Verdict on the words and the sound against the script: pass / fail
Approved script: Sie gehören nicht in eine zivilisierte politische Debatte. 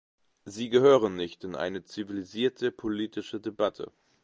pass